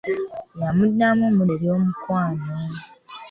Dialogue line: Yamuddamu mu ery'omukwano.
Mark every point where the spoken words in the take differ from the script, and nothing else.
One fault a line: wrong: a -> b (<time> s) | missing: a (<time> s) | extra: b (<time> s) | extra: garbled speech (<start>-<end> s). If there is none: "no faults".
no faults